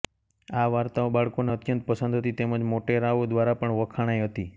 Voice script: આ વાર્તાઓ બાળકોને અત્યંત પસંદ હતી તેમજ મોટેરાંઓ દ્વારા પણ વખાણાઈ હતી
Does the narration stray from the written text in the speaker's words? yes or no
no